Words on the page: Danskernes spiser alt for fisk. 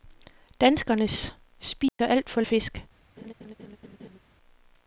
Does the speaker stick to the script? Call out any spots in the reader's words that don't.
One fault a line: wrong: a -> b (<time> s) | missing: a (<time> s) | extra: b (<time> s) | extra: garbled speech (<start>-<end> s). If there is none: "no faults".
no faults